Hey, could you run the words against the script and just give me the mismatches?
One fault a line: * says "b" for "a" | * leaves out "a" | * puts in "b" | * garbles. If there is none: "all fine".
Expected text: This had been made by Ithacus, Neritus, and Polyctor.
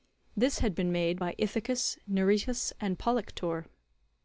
all fine